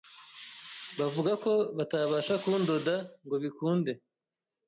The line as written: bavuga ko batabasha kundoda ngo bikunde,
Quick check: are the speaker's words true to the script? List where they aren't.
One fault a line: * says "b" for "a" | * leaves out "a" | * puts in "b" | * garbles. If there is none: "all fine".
all fine